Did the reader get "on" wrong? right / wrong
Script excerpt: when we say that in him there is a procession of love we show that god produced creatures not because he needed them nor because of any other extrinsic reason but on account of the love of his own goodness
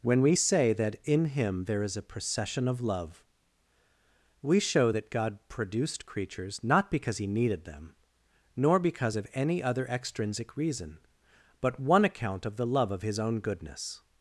wrong